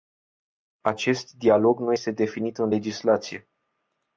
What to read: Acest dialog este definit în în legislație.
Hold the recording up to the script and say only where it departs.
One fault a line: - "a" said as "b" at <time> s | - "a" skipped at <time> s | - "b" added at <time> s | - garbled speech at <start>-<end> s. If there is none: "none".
- "nu" added at 1.8 s
- "în" skipped at 2.7 s